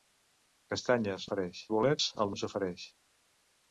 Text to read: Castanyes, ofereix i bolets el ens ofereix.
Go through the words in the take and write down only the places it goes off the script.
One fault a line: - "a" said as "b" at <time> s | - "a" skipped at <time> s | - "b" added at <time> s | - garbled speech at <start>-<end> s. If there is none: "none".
none